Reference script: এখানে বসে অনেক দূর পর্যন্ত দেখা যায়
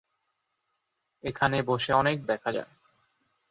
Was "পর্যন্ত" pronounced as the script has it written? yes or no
no